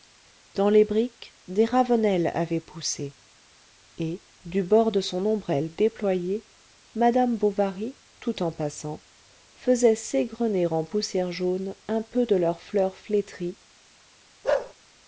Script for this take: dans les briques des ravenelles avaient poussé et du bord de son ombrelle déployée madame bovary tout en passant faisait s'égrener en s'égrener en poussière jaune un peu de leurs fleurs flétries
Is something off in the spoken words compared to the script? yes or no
yes